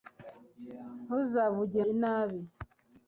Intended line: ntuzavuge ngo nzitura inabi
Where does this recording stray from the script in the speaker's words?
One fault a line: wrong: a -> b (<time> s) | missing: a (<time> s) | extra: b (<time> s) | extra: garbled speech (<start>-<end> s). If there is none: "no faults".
missing: ngo nzitura (1.8 s)